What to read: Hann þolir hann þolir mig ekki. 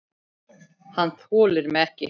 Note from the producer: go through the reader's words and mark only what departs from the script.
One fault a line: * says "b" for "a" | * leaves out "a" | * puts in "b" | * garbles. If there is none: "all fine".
* leaves out "hann þolir"